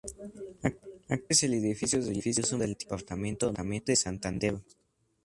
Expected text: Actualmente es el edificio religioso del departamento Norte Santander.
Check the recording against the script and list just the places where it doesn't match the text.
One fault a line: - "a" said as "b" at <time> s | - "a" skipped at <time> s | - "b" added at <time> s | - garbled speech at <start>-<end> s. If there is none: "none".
none